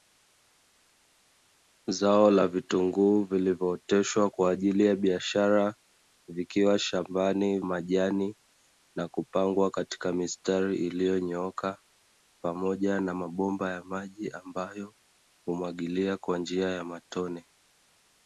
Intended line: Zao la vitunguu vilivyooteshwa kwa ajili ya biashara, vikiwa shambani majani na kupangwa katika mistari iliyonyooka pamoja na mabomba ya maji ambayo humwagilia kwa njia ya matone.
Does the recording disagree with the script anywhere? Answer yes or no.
no